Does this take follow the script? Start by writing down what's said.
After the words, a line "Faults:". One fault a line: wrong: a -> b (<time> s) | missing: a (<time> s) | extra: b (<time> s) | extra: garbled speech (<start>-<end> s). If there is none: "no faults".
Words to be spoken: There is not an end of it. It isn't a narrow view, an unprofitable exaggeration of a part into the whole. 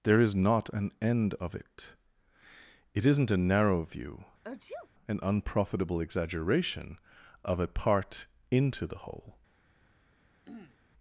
There is not an end of it. It isn't a narrow view, an unprofitable exaggeration of a part into the whole.
Faults:
no faults